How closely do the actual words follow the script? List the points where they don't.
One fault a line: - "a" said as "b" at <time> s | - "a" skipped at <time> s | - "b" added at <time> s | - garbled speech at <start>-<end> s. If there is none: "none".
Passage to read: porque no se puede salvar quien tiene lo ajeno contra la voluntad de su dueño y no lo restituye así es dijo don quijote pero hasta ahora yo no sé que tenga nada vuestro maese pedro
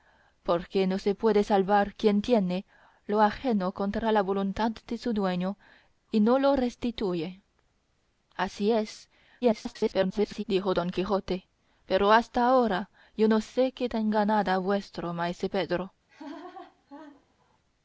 - garbled speech at 9.4-10.4 s